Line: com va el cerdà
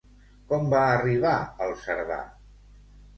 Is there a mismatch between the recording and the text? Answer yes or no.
yes